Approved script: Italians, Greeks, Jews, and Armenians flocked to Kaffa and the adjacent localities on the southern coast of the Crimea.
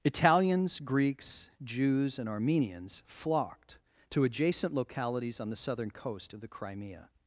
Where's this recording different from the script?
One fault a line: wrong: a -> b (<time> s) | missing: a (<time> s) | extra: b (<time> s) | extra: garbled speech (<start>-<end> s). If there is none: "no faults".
missing: Kaffa and the (4.2 s)